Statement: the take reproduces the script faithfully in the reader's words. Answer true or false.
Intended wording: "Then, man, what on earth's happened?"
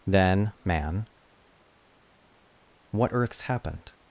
false